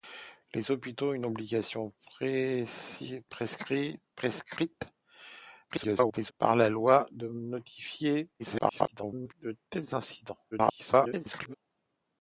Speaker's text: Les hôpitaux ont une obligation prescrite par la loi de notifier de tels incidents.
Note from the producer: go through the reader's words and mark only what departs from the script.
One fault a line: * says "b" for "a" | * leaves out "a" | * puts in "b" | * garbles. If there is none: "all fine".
* garbles
* garbles
* garbles